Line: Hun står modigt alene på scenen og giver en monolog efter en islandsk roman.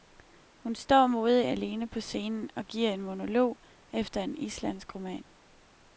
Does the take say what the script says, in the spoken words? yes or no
yes